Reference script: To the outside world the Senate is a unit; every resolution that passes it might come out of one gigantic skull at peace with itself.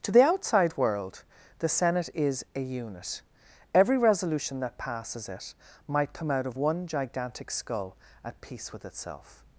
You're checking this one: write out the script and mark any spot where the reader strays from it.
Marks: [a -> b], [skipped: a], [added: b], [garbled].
To the outside world the Senate is a unit; every resolution that passes it might come out of one gigantic skull at peace with itself.